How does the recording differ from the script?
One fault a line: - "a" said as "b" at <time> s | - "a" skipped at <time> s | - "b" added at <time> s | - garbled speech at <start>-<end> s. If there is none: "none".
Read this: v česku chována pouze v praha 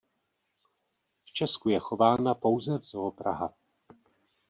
- "je" added at 1.7 s
- "zoo" added at 2.8 s